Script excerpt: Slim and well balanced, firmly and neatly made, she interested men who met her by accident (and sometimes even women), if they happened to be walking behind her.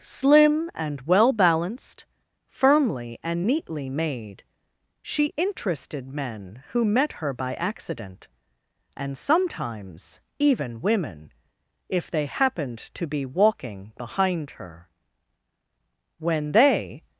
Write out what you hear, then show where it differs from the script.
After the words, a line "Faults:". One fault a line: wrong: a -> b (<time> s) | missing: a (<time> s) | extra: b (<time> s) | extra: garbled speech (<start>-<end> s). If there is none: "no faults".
Slim and well balanced, firmly and neatly made, she interested men who met her by accident (and sometimes even women), if they happened to be walking behind her. When they
Faults:
extra: When they (16.2 s)